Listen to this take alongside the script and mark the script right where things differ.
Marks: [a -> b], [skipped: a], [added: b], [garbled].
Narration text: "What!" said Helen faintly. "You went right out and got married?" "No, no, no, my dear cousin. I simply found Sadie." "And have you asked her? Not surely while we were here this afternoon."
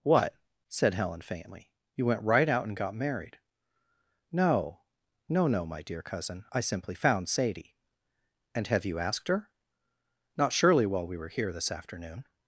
"What!" said Helen faintly. "You went right out and got married?" "No, no, no, my dear cousin. I simply found Sadie." "And have you asked her? Not surely while we were here this afternoon."